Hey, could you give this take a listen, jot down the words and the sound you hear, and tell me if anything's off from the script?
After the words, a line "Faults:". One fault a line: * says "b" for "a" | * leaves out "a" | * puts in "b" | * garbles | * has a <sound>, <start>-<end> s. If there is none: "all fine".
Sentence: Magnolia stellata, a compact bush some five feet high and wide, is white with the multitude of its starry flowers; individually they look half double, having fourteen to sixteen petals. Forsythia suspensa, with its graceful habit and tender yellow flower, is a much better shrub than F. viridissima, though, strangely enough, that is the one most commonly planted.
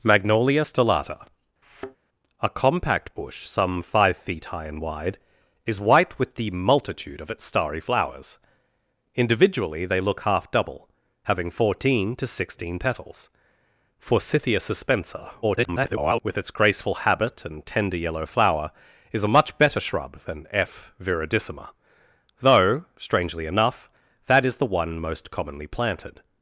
Magnolia stellata, a compact bush some five feet high and wide, is white with the multitude of its starry flowers; individually they look half double, having fourteen to sixteen petals. Forsythia suspensa, [garbled] with its graceful habit and tender yellow flower, is a much better shrub than F. viridissima, though, strangely enough, that is the one most commonly planted.
Faults:
* has a thud, 1.6-2.0 s
* garbles